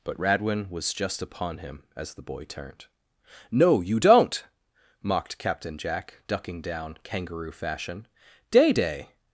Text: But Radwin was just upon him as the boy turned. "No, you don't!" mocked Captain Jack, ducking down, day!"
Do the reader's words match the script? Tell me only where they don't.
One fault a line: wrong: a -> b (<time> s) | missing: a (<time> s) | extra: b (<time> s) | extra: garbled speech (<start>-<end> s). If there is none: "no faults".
extra: kangaroo fashion Day (7.0 s)